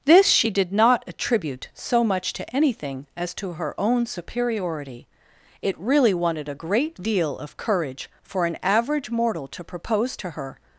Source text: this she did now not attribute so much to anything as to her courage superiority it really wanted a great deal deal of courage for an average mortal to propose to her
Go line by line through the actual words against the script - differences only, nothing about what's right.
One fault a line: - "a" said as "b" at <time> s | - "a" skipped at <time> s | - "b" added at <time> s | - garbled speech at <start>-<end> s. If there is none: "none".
- "now" skipped at 0.7 s
- "courage" said as "own" at 3.8 s
- "deal" skipped at 7.4 s